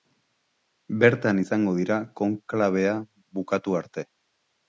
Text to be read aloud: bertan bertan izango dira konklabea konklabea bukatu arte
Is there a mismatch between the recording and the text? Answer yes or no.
yes